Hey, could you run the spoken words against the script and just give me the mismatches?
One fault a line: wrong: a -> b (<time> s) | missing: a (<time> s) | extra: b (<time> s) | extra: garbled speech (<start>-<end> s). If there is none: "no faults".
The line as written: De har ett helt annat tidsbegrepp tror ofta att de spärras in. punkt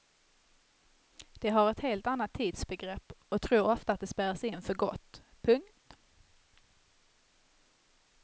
extra: och (3.3 s)
extra: för gott (4.6 s)